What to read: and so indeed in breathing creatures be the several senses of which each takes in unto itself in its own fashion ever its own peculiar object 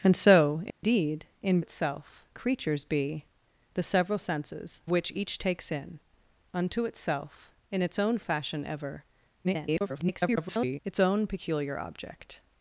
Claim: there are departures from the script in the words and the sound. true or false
true